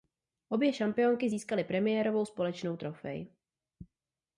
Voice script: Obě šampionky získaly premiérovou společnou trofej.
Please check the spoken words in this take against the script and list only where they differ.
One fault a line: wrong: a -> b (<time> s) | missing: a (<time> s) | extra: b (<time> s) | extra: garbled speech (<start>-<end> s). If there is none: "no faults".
no faults